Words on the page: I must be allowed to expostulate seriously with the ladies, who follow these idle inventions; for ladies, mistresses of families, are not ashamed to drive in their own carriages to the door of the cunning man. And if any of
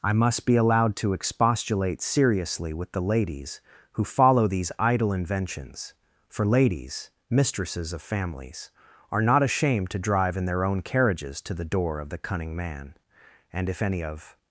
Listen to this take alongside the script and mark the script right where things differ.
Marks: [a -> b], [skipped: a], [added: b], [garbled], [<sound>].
I must be allowed to expostulate seriously with the ladies, who follow these idle inventions; for ladies, mistresses of families, are not ashamed to drive in their own carriages to the door of the cunning man. And if any of